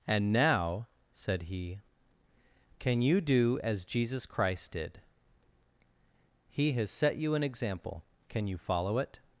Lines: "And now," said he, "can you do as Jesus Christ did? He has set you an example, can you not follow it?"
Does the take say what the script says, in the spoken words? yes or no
no